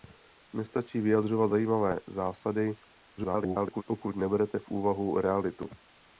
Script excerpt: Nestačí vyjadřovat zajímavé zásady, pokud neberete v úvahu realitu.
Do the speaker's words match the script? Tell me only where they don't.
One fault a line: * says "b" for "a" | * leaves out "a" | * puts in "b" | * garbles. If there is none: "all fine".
* garbles